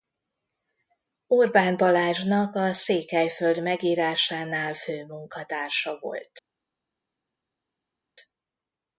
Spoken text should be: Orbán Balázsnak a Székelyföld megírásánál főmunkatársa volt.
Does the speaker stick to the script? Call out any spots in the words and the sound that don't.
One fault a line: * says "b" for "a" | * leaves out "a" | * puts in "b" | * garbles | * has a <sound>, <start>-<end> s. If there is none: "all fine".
all fine